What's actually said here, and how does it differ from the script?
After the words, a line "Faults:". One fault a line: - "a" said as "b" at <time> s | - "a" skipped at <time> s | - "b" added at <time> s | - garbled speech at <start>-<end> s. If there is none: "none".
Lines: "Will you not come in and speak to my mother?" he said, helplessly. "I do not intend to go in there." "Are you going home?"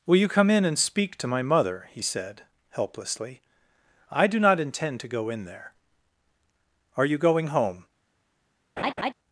"Will you come in and speak to my mother?" he said, helplessly. "I do not intend to go in there." "Are you going home?"
Faults:
- "not" skipped at 0.3 s